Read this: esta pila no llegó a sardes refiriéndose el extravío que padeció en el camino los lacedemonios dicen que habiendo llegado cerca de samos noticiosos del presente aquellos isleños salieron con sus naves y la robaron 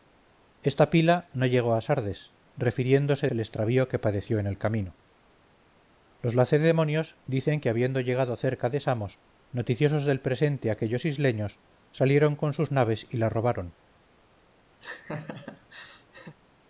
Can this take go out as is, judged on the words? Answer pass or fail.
pass